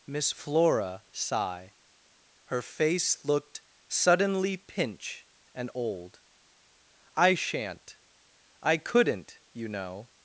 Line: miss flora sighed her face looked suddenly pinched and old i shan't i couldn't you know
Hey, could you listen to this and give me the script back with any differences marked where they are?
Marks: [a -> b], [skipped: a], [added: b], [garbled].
miss flora [sighed -> sigh] her face looked suddenly [pinched -> pinch] and old i shan't i couldn't you know